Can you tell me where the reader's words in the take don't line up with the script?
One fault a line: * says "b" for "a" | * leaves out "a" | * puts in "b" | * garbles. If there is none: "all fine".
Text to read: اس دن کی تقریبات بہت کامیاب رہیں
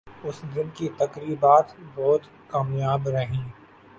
all fine